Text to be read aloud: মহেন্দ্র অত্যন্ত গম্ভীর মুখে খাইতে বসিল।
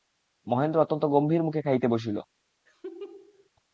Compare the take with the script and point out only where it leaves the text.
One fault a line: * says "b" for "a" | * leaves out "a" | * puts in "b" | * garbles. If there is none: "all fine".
all fine